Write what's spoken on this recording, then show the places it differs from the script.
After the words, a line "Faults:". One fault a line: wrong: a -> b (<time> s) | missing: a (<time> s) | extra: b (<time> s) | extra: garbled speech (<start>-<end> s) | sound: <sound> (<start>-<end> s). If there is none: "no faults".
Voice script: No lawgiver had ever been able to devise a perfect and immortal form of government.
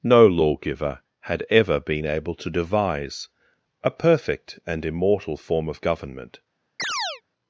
No lawgiver had ever been able to devise a perfect and immortal form of government.
Faults:
sound: chirp (6.8-7.2 s)